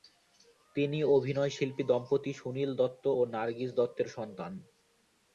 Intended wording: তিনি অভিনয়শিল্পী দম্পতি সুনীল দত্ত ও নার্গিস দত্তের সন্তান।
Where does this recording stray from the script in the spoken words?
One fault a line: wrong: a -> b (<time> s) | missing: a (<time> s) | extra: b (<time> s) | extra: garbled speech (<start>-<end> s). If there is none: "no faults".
no faults